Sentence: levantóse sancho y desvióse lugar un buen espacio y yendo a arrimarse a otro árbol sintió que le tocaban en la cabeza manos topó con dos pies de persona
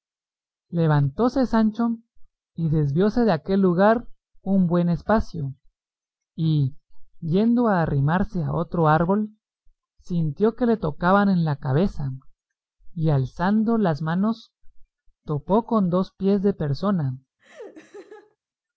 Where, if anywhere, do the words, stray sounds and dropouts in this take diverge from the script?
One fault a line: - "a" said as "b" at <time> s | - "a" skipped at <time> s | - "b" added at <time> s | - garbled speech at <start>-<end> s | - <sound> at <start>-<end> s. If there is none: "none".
- "de aquel" added at 3.2 s
- "y alzando las" added at 12.9 s
- laugh at 17.4-18.4 s